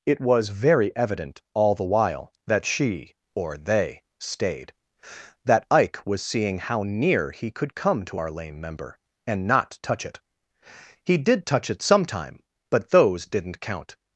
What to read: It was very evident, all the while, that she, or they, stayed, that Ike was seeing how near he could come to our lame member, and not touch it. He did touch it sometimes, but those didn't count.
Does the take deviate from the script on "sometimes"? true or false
true